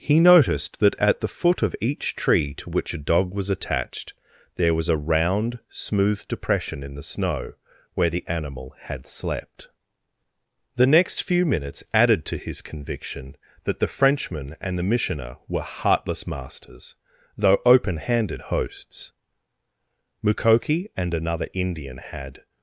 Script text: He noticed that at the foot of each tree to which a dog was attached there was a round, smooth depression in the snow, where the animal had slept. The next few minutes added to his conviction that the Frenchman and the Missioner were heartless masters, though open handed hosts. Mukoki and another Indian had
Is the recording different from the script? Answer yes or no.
no